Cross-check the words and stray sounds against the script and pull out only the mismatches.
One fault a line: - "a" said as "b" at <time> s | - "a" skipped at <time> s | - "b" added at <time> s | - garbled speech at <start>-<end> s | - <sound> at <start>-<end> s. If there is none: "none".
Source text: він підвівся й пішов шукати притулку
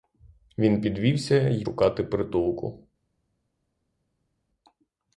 - "пішов" skipped at 1.6 s